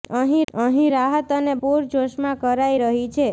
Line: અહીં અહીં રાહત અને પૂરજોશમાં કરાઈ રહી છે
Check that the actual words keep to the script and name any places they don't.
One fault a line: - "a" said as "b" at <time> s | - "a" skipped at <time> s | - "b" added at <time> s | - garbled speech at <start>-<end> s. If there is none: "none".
none